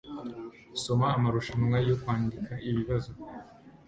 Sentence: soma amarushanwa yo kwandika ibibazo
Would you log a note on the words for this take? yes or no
no